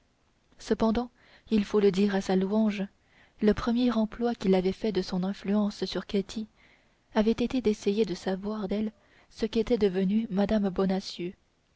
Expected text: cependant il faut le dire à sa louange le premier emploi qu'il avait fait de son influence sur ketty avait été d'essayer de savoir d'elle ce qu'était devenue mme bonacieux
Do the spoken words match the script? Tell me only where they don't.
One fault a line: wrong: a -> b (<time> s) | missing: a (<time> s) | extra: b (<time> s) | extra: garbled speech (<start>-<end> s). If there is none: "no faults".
no faults